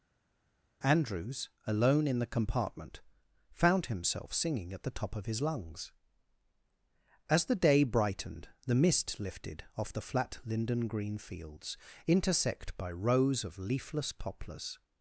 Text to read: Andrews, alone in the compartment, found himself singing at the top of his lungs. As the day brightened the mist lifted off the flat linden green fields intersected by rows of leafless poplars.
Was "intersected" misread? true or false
true